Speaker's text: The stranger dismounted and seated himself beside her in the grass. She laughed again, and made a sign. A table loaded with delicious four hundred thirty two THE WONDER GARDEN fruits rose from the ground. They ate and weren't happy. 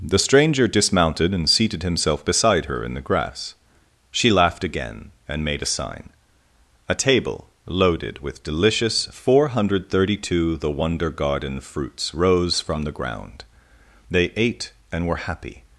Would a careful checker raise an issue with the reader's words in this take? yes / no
yes